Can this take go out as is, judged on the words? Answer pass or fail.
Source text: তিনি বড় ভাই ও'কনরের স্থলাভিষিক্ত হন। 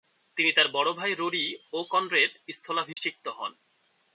fail